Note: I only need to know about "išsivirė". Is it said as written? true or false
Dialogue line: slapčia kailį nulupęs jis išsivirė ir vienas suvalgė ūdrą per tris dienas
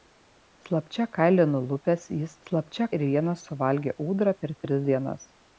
false